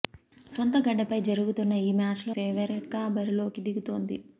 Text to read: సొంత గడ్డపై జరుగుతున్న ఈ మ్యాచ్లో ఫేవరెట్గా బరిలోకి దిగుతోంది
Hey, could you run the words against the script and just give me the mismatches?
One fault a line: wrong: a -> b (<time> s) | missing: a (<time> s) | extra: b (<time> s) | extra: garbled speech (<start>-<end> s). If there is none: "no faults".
no faults